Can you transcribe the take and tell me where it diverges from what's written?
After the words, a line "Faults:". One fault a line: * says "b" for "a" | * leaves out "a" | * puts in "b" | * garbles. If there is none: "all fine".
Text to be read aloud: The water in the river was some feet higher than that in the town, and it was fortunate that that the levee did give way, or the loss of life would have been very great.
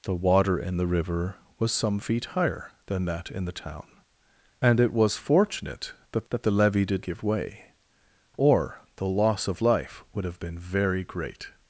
The water in the river was some feet higher than that in the town, and it was fortunate that that the levee did give way, or the loss of life would have been very great.
Faults:
all fine